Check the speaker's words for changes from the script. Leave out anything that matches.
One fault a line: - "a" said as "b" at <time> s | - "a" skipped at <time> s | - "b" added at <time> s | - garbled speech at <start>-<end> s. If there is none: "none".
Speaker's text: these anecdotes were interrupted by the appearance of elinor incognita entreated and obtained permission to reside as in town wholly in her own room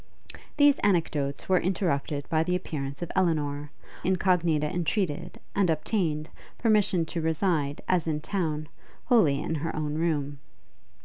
none